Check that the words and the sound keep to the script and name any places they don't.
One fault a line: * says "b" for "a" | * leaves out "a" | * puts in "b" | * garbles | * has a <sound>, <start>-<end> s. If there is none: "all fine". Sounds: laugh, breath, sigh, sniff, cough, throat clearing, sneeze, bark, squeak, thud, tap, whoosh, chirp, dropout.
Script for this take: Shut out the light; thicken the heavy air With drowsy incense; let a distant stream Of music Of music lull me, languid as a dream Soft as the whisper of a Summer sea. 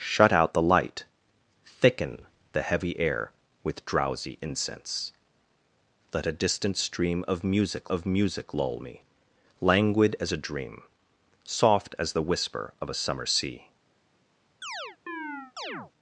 * has a chirp, 14.6-15.9 s